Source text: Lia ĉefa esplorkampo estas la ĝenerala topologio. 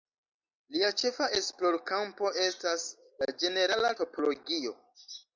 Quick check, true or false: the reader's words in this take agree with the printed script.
true